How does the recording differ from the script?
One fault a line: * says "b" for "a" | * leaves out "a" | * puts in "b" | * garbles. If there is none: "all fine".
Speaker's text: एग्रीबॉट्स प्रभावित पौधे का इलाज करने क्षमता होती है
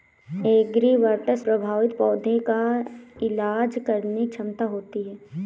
all fine